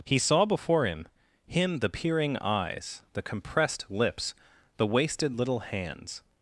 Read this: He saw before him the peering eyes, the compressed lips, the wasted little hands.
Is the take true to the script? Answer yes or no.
no